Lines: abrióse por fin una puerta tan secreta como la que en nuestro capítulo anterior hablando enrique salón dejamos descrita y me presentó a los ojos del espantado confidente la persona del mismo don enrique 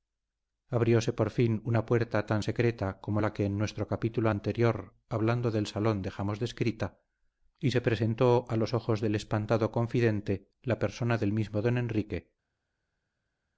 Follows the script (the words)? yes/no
no